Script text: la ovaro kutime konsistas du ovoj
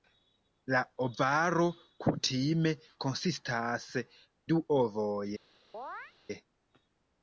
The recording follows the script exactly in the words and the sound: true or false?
false